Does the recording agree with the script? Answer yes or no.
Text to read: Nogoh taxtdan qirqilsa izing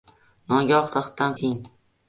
no